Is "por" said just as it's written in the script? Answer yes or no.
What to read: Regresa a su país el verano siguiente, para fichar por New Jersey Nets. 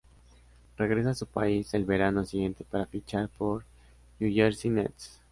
yes